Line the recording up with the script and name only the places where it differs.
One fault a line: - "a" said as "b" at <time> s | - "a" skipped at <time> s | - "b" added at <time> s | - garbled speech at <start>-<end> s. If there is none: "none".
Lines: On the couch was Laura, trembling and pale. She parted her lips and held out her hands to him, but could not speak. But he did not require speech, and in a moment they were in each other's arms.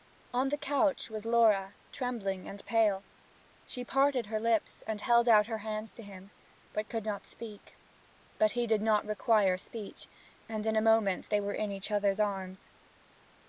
none